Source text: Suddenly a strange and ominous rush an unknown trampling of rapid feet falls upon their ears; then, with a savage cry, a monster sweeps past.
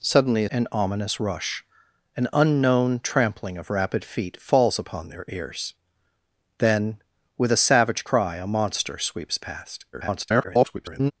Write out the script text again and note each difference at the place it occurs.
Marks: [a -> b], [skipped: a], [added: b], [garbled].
Suddenly a [skipped: strange] and ominous rush an unknown trampling of rapid feet falls upon their ears; then, with a savage cry, a monster sweeps past. [garbled]